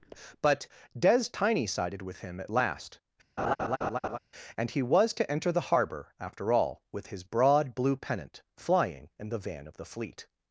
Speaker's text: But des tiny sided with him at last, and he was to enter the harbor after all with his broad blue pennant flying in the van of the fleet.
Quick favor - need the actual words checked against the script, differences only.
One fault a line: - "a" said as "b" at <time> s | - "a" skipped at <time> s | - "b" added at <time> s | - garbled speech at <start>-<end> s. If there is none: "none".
none